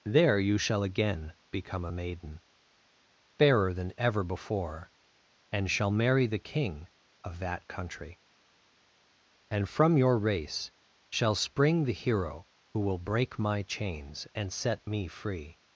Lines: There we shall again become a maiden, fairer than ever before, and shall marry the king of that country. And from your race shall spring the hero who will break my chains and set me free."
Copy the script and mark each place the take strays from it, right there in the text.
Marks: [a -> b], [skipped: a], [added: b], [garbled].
There [we -> you] shall again become a maiden, fairer than ever before, and shall marry the king of that country. And from your race shall spring the hero who will break my chains and set me free."